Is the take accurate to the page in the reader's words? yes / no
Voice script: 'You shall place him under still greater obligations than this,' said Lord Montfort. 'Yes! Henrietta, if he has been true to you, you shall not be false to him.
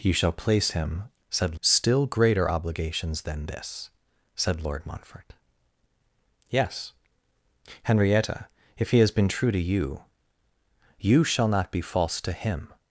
no